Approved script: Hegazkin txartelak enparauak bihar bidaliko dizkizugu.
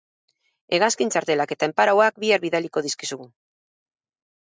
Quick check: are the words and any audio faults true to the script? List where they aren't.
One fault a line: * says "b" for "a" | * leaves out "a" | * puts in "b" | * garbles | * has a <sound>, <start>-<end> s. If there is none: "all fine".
* puts in "eta"